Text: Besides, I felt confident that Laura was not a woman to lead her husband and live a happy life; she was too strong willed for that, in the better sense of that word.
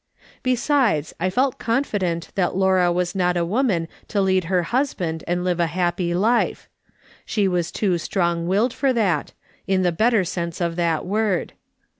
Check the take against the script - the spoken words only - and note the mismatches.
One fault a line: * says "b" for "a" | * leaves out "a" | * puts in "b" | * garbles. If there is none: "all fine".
all fine